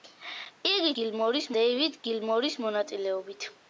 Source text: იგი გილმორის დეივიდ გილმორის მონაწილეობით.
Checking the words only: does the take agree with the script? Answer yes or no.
yes